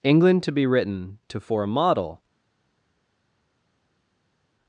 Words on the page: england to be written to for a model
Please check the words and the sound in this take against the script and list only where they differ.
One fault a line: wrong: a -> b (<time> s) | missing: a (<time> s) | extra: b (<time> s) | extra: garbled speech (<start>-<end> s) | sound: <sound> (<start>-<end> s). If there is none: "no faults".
no faults